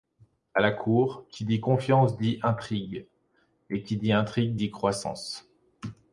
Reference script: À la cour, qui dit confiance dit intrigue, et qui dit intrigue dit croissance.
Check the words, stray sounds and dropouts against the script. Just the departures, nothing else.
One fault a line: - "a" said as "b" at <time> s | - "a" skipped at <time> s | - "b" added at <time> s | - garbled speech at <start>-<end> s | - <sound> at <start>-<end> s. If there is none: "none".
none